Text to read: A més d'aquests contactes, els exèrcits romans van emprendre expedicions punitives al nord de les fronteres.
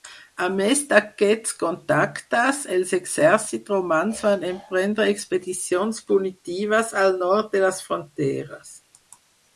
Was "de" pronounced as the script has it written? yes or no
yes